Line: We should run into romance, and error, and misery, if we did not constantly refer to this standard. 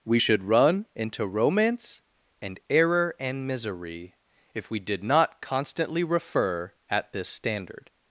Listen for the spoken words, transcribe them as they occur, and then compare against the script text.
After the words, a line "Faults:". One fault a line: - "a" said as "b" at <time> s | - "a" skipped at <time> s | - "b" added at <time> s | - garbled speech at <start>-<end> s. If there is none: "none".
We should run into romance, and error, and misery, if we did not constantly refer at this standard.
Faults:
- "to" said as "at" at 6.9 s